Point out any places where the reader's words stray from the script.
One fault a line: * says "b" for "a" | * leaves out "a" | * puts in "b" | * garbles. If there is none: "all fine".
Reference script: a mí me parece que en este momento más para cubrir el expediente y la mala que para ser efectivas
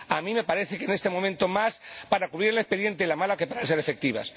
all fine